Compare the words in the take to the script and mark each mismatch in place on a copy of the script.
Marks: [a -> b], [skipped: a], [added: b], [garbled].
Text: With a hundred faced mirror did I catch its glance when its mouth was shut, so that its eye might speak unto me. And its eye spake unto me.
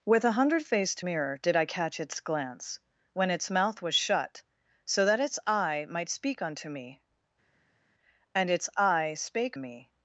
With a hundred faced mirror did I catch its glance when its mouth was shut, so that its eye might speak unto me. And its eye spake [skipped: unto] me.